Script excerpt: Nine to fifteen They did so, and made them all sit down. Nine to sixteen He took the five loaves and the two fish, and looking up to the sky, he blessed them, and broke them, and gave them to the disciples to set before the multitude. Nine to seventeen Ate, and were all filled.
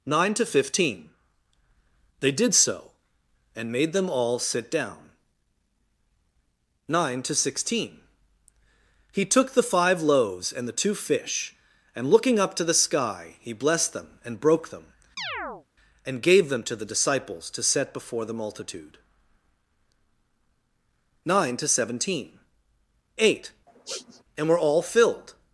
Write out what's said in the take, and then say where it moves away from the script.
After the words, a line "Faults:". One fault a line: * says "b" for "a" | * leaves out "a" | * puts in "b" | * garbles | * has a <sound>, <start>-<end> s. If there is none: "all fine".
Nine to fifteen They did so, and made them all sit down. Nine to sixteen He took the five loaves and the two fish, and looking up to the sky, he blessed them, and broke them, and gave them to the disciples to set before the multitude. Nine to seventeen Ate, and were all filled.
Faults:
* has a chirp, 15.2-15.7 s
* has a sniff, 23.7-24.2 s